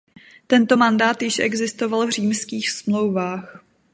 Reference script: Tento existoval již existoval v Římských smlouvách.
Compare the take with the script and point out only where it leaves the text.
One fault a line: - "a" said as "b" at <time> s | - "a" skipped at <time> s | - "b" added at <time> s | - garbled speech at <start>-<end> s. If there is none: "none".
- "existoval" said as "mandát" at 0.7 s